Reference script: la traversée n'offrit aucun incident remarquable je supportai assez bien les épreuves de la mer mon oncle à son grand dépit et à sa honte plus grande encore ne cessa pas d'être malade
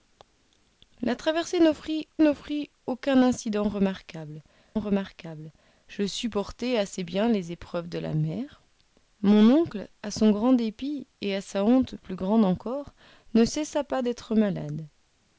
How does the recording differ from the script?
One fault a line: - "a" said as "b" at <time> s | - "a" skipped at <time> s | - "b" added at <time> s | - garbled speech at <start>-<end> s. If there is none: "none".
- "n'offrit" added at 2.2 s
- "remarquable" added at 4.8 s